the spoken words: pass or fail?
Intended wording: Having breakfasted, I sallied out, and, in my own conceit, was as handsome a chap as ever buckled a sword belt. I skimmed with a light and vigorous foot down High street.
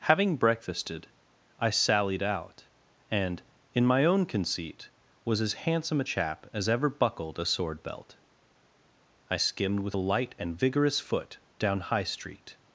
pass